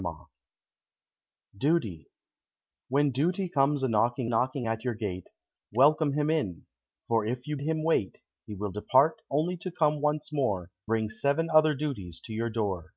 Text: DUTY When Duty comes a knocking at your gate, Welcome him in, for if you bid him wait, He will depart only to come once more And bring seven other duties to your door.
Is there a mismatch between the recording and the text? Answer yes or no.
yes